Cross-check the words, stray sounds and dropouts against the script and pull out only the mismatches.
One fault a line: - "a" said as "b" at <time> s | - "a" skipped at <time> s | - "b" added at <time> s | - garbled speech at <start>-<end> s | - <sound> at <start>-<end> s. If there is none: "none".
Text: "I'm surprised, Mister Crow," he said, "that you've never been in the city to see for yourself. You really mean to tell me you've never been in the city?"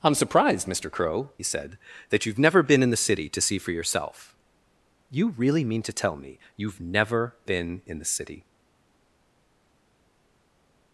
- "he" skipped at 1.3 s